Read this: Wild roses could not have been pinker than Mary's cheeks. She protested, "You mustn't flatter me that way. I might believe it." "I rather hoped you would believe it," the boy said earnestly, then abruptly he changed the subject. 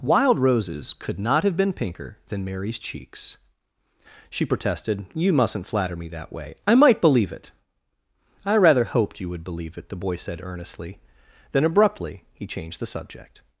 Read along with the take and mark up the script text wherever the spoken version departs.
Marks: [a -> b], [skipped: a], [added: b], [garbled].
Wild roses could not have been pinker than Mary's cheeks. She protested, "You mustn't flatter me that way. I might believe it." "I rather hoped you would believe it," the boy said earnestly, then abruptly he changed the subject.